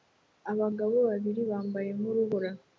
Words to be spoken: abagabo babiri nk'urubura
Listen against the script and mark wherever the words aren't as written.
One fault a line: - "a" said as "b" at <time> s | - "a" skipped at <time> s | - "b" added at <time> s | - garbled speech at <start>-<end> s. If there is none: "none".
- "bambaye" added at 1.5 s